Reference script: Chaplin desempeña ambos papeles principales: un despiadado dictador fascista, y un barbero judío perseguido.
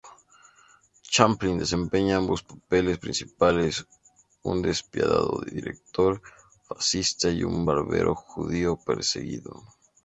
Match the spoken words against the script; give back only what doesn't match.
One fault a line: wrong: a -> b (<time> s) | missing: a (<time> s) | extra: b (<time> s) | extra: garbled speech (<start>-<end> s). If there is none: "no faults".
no faults